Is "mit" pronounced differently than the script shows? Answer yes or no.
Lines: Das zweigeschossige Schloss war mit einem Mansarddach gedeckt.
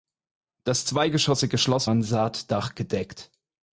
yes